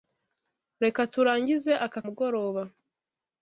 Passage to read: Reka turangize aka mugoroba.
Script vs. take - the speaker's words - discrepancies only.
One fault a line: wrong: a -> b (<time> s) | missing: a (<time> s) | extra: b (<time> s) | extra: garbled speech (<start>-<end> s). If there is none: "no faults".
no faults